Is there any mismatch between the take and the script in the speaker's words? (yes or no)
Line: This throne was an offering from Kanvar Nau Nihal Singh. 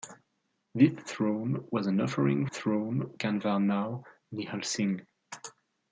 yes